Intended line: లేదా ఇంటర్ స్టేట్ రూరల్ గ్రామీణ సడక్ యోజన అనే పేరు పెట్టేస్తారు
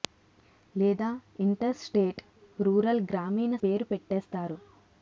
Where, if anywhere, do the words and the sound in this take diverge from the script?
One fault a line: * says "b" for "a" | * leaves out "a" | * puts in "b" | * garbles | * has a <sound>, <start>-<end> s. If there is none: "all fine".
* leaves out "సడక్ యోజన అనే"